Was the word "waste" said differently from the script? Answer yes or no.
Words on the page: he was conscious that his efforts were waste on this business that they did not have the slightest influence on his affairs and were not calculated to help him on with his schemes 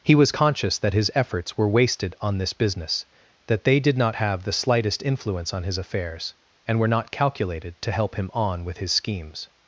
yes